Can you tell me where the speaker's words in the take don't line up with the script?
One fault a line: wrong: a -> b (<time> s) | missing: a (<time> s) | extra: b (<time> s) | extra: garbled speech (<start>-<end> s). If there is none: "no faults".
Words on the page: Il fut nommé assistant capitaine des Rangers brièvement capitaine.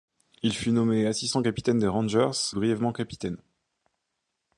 no faults